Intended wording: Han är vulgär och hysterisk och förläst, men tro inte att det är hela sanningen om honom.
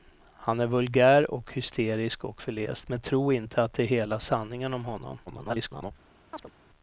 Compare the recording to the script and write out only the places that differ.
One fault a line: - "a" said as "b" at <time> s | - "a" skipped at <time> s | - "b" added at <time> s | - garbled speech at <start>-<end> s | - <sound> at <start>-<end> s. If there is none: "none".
- garbled speech at 5.3-5.9 s
- chirp at 6.3-6.5 s